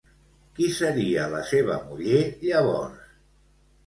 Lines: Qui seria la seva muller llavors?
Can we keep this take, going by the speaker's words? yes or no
yes